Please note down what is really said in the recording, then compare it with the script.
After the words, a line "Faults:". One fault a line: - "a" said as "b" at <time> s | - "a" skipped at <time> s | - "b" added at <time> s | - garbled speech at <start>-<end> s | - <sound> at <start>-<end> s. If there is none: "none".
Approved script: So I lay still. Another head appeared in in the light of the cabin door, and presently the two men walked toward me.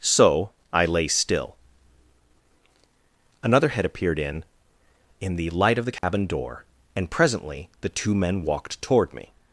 So I lay still. Another head appeared in in the light of the cabin door, and presently the two men walked toward me.
Faults:
- dropout at 6.0-6.0 s